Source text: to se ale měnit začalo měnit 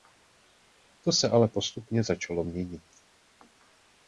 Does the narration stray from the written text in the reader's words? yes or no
yes